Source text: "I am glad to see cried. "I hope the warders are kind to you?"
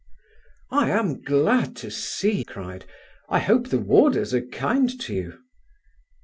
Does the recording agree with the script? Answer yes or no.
yes